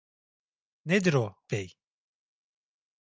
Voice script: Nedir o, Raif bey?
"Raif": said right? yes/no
no